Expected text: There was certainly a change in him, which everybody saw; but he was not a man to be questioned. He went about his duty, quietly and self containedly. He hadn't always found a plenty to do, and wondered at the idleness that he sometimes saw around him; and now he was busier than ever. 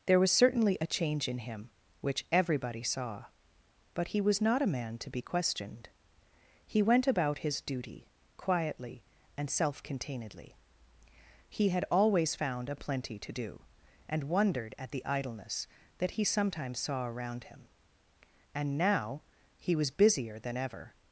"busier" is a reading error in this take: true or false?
false